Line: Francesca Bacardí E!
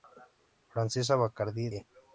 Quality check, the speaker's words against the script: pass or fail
pass